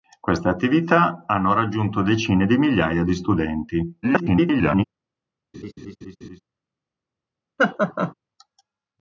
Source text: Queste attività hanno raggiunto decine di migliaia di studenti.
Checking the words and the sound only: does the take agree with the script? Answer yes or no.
no